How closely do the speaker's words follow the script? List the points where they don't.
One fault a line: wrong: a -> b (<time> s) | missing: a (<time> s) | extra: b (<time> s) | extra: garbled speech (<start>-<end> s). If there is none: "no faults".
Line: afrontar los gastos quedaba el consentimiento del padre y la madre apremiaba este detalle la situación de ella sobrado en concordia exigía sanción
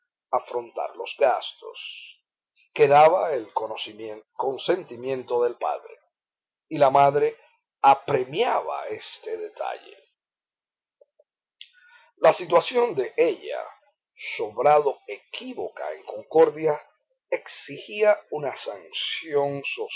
extra: equívoca (15.1 s)
extra: una (18.3 s)